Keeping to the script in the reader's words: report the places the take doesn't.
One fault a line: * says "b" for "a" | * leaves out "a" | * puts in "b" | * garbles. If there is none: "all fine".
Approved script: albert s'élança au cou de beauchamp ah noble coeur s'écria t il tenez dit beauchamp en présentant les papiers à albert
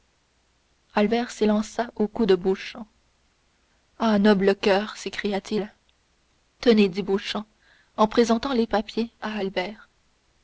all fine